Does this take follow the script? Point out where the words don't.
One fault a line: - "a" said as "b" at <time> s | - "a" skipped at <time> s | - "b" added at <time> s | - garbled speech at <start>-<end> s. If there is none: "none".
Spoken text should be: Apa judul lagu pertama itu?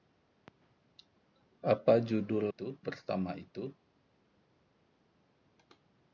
- "lagu" said as "itu" at 2.4 s